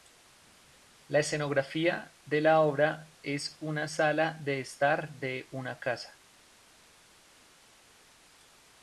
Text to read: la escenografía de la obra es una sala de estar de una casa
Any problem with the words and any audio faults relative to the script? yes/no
no